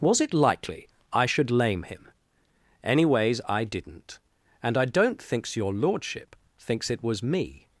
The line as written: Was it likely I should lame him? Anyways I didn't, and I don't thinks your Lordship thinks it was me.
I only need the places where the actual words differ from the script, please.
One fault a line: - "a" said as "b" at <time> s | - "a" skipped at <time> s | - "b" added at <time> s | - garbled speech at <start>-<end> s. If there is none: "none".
none